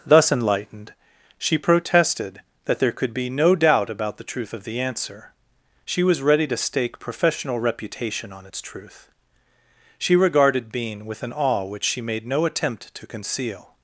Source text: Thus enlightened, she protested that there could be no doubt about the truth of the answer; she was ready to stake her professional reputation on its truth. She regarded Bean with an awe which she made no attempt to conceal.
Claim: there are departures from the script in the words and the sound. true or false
true